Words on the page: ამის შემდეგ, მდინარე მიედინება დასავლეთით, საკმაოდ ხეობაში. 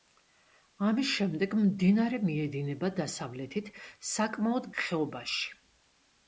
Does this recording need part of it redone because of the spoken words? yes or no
no